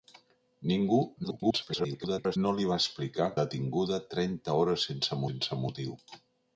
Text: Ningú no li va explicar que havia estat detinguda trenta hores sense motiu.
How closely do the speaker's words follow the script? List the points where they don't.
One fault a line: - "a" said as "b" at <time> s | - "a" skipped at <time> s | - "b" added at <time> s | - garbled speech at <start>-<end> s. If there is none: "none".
- garbled speech at 1.2-2.4 s
- "que havia estat" skipped at 3.3 s
- "sense" added at 5.3 s